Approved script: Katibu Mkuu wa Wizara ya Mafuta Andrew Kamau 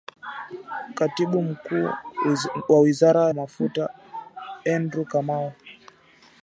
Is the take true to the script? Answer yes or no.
no